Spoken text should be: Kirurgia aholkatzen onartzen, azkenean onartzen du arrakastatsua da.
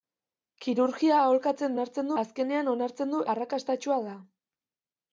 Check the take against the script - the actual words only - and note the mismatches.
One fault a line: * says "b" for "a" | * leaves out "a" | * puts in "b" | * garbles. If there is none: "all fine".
all fine